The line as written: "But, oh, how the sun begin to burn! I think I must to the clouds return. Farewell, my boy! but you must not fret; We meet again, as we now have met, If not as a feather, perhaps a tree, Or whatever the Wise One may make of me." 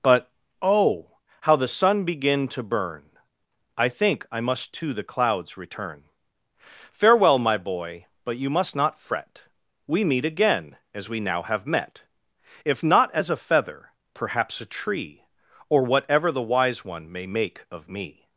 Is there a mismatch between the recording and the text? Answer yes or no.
no